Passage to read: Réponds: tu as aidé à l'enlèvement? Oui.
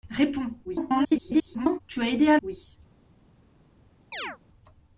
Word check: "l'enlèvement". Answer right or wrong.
wrong